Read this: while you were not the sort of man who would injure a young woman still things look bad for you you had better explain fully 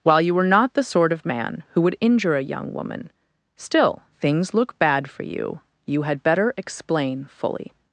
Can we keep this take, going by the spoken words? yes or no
yes